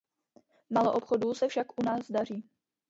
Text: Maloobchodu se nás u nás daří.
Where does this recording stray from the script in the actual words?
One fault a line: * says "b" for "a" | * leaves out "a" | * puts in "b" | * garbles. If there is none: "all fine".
* says "však" for "nás"